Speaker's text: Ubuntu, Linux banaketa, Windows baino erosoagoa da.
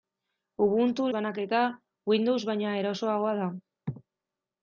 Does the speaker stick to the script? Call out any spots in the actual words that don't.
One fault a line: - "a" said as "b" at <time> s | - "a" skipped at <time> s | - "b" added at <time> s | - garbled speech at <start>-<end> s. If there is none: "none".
- "Linux" skipped at 1.1 s